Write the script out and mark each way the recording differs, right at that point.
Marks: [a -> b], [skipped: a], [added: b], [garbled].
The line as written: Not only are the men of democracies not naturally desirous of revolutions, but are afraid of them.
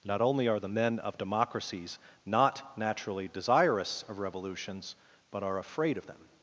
Not only are the men of democracies not naturally desirous of revolutions, but are afraid of them.